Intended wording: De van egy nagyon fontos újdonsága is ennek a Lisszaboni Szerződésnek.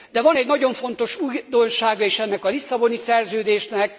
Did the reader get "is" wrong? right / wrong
right